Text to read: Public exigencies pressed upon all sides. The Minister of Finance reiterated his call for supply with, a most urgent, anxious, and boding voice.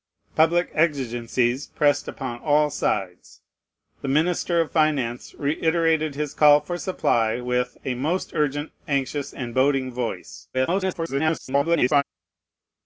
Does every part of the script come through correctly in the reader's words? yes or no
no